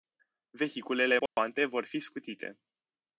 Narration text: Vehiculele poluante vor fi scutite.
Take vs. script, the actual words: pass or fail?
pass